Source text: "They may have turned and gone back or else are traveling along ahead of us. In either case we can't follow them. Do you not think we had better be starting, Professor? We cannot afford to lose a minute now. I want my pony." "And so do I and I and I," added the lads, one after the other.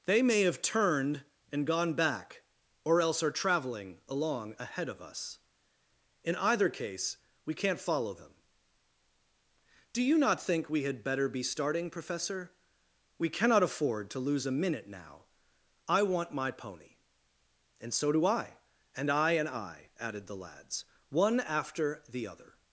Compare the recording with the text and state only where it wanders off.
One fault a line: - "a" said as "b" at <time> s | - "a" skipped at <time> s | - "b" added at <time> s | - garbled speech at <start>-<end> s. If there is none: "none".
none